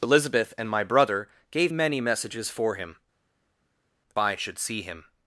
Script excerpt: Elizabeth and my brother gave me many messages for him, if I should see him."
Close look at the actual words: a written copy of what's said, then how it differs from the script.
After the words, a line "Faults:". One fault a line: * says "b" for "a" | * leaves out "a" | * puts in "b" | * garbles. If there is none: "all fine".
Elizabeth and my brother gave many messages for him, I should see him."
Faults:
* leaves out "me"
* leaves out "if"